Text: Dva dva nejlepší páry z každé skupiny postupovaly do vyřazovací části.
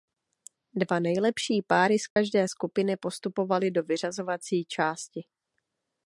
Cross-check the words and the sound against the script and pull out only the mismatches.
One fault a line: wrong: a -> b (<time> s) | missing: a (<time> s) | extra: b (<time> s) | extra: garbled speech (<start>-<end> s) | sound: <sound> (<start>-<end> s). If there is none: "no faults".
missing: dva (1.0 s)
sound: dropout (2.1-2.2 s)